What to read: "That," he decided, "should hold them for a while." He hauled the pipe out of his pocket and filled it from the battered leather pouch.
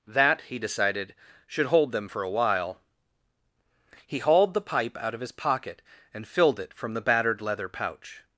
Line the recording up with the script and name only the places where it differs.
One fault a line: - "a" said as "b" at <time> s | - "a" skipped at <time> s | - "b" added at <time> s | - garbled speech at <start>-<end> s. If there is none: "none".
none